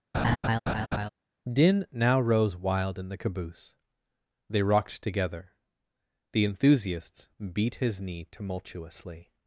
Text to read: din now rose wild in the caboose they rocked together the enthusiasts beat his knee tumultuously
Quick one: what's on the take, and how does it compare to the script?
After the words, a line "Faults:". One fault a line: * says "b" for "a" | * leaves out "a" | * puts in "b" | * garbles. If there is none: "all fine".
din now rose wild in the caboose they rocked together the enthusiasts beat his knee tumultuously
Faults:
all fine